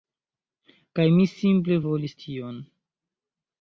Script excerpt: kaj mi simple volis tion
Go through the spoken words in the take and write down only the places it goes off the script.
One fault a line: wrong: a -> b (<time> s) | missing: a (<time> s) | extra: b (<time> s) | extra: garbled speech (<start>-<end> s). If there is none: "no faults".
no faults